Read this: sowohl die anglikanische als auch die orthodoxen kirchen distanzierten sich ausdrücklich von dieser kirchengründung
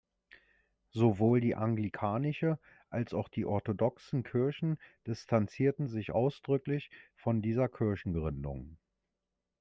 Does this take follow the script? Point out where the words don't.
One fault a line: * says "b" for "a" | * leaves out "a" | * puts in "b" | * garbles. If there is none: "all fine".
all fine